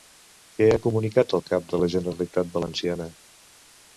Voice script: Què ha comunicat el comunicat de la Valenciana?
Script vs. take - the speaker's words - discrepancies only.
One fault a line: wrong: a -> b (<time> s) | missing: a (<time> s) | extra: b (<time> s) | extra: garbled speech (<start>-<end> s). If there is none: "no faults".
wrong: comunicat -> cap (1.5 s)
extra: Generalitat (2.0 s)